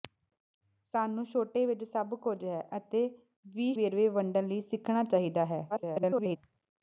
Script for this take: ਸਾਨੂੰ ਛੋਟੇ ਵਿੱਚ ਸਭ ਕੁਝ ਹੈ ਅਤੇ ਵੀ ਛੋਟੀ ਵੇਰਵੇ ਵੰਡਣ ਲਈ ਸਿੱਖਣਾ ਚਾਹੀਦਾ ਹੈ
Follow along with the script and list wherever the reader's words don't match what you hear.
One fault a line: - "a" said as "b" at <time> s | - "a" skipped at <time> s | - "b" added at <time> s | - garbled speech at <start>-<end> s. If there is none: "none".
- "ਛੋਟੀ" skipped at 3.7 s
- garbled speech at 5.7-6.4 s